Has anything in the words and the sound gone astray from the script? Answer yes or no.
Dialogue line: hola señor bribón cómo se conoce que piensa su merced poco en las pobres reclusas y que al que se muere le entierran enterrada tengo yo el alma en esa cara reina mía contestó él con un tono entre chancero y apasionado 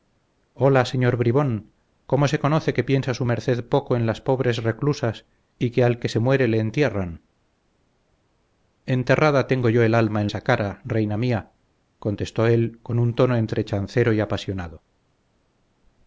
no